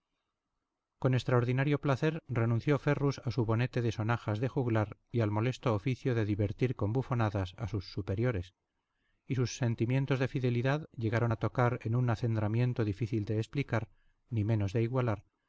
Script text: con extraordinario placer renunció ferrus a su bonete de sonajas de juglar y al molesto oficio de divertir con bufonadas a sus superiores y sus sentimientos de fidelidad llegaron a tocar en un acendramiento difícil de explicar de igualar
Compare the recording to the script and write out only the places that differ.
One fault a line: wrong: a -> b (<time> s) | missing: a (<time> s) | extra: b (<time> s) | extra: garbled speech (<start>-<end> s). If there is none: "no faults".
extra: ni menos (14.3 s)